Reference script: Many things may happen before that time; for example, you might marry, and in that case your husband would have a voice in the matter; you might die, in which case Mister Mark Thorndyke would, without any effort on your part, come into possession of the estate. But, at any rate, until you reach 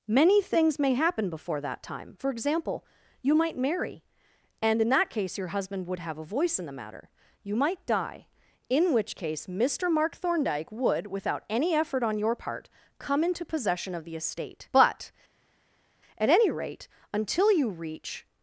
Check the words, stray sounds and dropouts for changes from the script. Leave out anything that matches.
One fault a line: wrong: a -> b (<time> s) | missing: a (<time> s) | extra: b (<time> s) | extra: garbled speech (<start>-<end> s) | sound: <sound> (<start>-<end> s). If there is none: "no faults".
no faults